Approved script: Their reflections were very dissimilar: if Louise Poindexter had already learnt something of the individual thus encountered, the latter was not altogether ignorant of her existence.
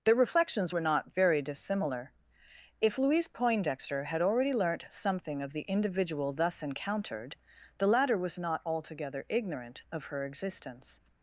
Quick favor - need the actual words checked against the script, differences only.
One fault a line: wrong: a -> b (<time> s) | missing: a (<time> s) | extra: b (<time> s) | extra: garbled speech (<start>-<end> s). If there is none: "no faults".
extra: not (0.8 s)